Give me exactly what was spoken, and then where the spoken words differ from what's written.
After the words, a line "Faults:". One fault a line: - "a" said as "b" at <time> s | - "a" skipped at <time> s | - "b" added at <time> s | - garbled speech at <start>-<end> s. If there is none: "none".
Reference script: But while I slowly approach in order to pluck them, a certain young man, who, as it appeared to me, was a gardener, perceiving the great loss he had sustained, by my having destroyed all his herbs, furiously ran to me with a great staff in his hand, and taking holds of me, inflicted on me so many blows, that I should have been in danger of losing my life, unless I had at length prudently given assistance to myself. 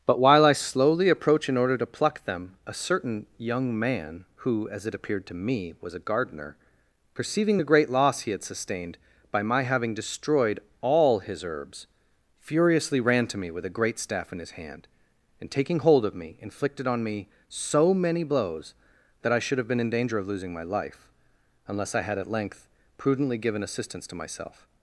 But while I slowly approach in order to pluck them, a certain young man, who, as it appeared to me, was a gardener, perceiving the great loss he had sustained, by my having destroyed all his herbs, furiously ran to me with a great staff in his hand, and taking hold of me, inflicted on me so many blows, that I should have been in danger of losing my life, unless I had at length prudently given assistance to myself.
Faults:
- "holds" said as "hold" at 15.8 s